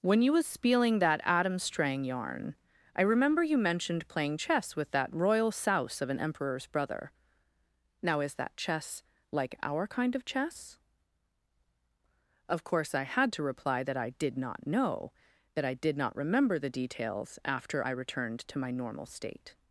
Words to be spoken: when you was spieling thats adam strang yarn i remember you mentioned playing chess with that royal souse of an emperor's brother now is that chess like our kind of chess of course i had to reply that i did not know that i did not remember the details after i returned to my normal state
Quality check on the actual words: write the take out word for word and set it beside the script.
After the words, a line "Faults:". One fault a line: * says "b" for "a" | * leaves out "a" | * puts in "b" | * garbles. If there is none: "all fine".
when you was spieling that adam strang yarn i remember you mentioned playing chess with that royal souse of an emperor's brother now is that chess like our kind of chess of course i had to reply that i did not know that i did not remember the details after i returned to my normal state
Faults:
* says "that" for "thats"